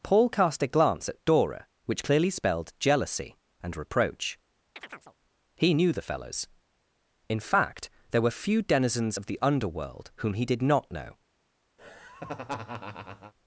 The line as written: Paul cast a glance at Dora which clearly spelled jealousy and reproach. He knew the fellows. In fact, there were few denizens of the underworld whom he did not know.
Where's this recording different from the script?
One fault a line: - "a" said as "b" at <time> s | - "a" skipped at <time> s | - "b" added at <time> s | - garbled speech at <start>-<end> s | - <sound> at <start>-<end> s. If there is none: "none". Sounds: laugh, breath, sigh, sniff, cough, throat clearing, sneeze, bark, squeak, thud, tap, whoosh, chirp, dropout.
- chirp at 4.8-5.2 s
- laugh at 11.8-13.3 s